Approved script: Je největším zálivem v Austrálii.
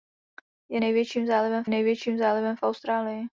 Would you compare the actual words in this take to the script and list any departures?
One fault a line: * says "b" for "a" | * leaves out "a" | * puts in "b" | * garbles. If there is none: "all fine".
* puts in "největším zálivem"